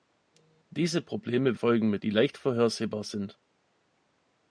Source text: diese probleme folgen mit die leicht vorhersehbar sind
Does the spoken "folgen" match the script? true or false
true